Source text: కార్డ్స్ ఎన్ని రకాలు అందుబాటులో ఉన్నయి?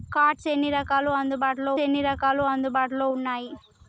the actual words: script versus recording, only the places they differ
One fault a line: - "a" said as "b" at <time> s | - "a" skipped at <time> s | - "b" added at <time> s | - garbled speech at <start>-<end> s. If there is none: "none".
- "ఎన్ని రకాలు అందుబాటులో" added at 1.8 s